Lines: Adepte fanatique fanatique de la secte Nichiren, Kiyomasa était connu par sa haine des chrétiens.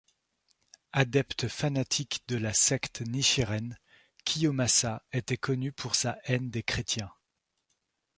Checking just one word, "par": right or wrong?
wrong